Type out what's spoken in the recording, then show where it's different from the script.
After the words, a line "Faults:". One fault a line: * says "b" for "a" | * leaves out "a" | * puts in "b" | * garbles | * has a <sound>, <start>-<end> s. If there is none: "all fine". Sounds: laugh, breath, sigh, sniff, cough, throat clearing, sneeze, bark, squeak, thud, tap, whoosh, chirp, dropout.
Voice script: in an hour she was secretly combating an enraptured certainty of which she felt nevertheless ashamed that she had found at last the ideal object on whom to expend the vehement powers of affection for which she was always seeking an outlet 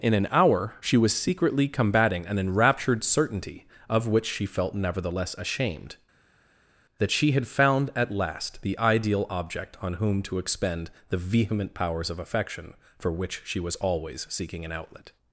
in an hour she was secretly combating an enraptured certainty of which she felt nevertheless ashamed that she had found at last the ideal object on whom to expend the vehement powers of affection for which she was always seeking an outlet
Faults:
all fine